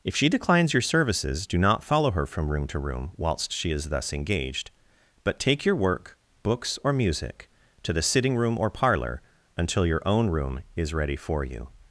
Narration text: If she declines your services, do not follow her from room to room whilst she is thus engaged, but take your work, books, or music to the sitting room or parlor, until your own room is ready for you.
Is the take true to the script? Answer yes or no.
yes